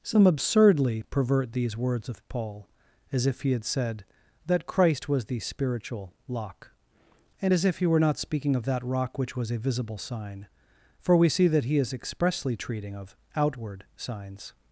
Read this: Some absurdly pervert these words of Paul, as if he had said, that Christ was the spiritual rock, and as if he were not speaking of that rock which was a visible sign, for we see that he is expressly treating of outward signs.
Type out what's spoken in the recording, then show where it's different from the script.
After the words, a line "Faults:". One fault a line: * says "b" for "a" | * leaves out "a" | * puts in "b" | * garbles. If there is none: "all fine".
Some absurdly pervert these words of Paul, as if he had said, that Christ was the spiritual lock, and as if he were not speaking of that rock which was a visible sign, for we see that he is expressly treating of outward signs.
Faults:
* says "lock" for "rock"